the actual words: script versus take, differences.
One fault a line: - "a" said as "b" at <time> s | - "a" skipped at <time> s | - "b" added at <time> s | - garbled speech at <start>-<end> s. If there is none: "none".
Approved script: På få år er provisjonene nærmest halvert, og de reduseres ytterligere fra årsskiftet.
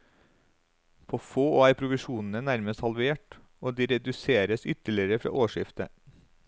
none